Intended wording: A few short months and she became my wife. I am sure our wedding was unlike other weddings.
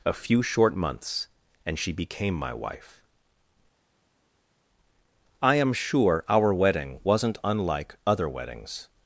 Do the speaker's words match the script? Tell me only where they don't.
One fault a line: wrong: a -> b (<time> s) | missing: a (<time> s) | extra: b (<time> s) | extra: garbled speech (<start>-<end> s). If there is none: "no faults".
wrong: was -> wasn't (7.0 s)